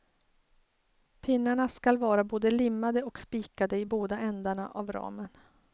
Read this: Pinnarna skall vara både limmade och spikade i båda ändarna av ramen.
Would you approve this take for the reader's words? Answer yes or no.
yes